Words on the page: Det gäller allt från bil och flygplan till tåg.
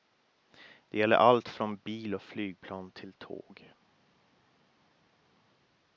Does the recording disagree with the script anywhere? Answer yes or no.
no